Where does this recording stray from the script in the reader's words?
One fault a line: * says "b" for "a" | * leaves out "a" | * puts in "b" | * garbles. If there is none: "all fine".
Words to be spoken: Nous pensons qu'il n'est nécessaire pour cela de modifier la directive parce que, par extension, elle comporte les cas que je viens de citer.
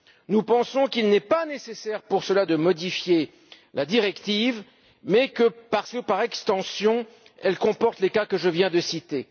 * puts in "pas"